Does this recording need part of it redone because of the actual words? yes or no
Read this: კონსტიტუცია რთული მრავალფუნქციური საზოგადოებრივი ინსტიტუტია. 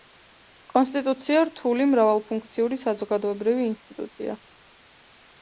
no